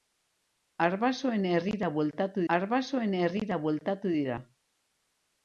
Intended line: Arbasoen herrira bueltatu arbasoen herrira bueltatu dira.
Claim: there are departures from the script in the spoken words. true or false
false